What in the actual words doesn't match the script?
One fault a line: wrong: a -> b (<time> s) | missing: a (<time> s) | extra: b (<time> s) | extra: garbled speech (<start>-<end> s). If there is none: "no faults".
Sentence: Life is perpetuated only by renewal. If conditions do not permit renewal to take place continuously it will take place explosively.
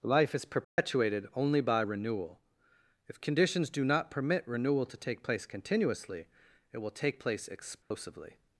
no faults